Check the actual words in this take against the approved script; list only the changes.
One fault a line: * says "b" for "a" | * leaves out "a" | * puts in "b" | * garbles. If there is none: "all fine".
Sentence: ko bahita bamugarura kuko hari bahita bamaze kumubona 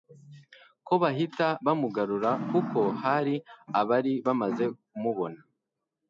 * says "abari" for "bahita"